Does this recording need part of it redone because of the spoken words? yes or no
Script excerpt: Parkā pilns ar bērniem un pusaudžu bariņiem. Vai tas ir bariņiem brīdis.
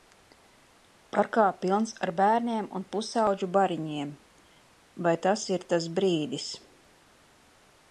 yes